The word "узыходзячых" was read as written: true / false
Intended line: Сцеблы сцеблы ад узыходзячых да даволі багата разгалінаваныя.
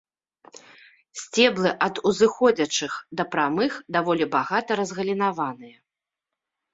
true